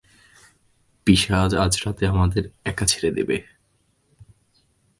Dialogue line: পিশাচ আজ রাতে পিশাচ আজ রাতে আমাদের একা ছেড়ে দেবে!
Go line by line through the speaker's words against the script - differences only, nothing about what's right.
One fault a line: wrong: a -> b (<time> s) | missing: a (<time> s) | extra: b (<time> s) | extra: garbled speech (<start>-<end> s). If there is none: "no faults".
missing: পিশাচ আজ রাতে (2.0 s)